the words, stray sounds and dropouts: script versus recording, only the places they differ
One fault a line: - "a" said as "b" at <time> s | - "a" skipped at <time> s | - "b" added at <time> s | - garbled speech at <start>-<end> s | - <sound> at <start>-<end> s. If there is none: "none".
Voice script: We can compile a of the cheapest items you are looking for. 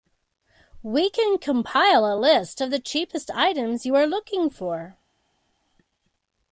- "list" added at 2.1 s